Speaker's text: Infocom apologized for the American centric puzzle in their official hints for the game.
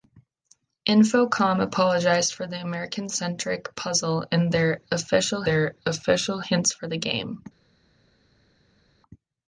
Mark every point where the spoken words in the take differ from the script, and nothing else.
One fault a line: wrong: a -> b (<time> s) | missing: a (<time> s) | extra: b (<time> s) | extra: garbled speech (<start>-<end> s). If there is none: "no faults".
extra: their official (5.4 s)